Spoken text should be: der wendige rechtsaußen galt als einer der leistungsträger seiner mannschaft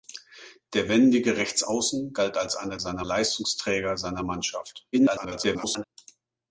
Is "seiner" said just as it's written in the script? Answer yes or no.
yes